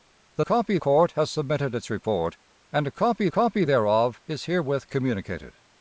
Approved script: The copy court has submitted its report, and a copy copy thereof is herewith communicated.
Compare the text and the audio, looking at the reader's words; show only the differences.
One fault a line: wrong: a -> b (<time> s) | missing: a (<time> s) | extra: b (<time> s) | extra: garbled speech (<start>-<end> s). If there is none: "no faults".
no faults